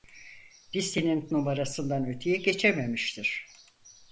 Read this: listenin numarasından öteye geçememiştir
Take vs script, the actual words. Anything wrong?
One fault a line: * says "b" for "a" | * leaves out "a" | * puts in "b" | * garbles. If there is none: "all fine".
all fine